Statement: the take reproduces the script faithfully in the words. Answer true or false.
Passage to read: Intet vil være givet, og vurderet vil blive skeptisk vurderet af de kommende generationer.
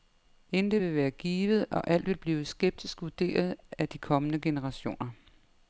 false